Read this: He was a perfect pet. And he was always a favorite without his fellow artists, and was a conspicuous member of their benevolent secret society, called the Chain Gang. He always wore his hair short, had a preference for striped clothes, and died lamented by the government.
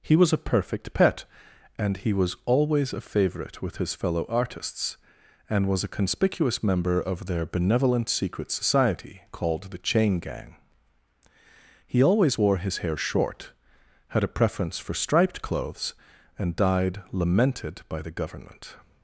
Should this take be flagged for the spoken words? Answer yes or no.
yes